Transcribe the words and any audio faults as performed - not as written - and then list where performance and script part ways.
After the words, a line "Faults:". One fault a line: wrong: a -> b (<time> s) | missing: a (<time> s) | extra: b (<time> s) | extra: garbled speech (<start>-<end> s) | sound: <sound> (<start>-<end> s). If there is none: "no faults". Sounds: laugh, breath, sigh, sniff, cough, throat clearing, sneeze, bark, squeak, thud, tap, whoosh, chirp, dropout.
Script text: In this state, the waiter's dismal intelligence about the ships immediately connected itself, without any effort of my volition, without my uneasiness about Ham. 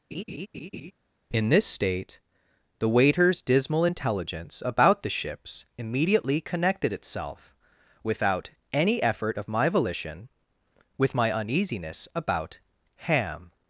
In this state, the waiter's dismal intelligence about the ships immediately connected itself, without any effort of my volition, with my uneasiness about Ham.
Faults:
sound: laugh (0.1-0.9 s)
wrong: without -> with (11.0 s)